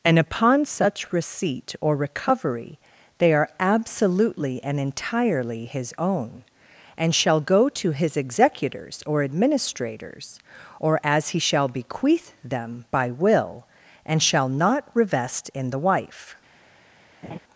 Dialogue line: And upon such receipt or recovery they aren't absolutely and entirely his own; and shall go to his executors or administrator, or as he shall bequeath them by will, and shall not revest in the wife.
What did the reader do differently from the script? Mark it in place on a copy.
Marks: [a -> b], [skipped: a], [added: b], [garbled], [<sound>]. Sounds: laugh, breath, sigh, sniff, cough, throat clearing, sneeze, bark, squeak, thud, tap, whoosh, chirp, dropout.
And upon such receipt or recovery they [aren't -> are] absolutely and entirely his own; and shall go to his executors or [administrator, -> administrators] or as he shall bequeath them by will, and shall not revest in the wife. [laugh]